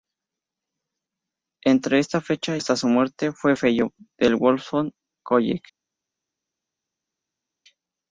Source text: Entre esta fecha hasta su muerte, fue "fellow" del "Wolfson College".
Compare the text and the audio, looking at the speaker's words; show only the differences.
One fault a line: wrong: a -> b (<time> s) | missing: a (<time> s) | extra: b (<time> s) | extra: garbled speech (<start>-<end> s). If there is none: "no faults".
no faults